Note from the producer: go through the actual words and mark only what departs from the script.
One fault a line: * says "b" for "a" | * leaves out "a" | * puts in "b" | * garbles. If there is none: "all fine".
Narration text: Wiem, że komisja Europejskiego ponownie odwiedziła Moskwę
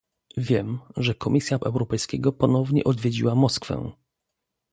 all fine